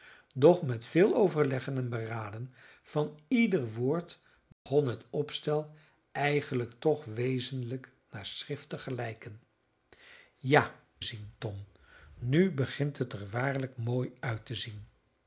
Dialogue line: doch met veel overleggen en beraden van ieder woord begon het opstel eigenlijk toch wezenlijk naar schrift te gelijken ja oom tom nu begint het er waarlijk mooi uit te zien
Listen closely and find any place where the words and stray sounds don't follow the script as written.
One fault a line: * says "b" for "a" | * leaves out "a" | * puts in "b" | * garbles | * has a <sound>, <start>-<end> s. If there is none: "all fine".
* has a dropout, 4.5-4.7 s
* says "zien" for "oom"